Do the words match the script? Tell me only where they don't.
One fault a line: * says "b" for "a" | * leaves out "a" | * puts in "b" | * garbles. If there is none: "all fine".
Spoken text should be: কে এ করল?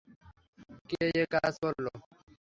* puts in "কাজ"